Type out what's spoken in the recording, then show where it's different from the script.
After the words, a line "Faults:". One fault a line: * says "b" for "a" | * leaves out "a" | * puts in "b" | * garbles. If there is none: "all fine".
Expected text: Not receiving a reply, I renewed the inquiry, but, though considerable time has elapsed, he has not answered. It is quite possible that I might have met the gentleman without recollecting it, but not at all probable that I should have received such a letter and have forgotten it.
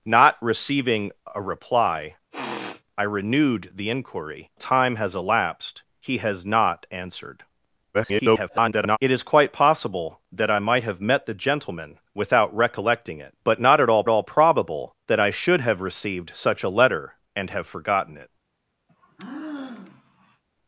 Not receiving a reply, I renewed the inquiry, time has elapsed, he has not answered. [garbled] It is quite possible that I might have met the gentleman without recollecting it, but not at all all probable that I should have received such a letter and have forgotten it.
Faults:
* leaves out "but though considerable"
* garbles
* puts in "all"